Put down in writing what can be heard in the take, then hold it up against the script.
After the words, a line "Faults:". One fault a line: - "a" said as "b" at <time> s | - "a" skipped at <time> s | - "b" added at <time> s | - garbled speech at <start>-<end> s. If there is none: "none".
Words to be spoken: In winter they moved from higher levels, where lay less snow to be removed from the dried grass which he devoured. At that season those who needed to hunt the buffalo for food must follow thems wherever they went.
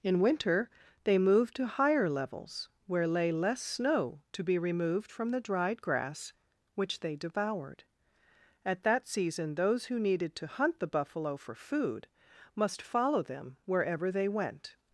In winter they moved to higher levels, where lay less snow to be removed from the dried grass which they devoured. At that season those who needed to hunt the buffalo for food must follow them wherever they went.
Faults:
- "from" said as "to" at 1.6 s
- "he" said as "they" at 7.0 s
- "thems" said as "them" at 13.2 s